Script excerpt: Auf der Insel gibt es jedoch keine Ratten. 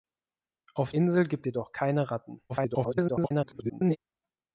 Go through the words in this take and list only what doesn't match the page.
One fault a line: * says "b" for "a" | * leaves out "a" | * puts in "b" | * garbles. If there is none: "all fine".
* leaves out "der"
* leaves out "es"
* garbles